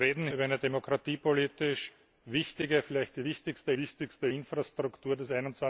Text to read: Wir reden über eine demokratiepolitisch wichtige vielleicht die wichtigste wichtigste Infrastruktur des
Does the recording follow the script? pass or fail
pass